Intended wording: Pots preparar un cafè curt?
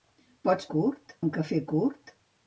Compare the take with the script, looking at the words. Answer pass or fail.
fail